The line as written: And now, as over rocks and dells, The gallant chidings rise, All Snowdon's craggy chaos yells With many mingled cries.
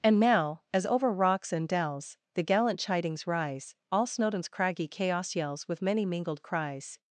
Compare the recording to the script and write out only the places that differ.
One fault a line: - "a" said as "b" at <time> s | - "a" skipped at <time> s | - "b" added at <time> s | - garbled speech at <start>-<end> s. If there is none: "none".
none